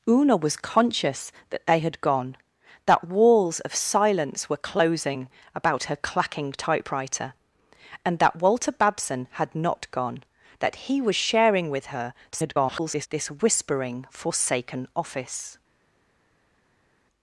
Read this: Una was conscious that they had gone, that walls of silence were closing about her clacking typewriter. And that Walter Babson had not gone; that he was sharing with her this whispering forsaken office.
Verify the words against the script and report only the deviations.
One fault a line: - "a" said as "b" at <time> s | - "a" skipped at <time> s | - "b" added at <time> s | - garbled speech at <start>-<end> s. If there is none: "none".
- garbled speech at 12.3-13.1 s